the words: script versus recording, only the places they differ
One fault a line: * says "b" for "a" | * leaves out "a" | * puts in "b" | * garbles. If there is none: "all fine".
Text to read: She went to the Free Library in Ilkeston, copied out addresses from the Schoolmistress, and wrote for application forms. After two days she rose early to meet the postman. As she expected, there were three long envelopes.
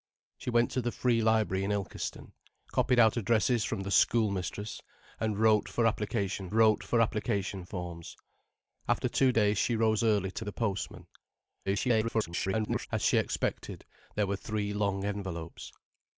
* puts in "wrote for application"
* leaves out "meet"
* garbles